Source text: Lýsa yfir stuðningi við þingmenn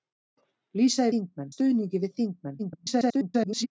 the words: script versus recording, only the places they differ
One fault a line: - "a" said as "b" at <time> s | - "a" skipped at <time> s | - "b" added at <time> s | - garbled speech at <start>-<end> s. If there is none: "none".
- "yfir" said as "þingmenn" at 1.1 s
- garbled speech at 2.6-3.7 s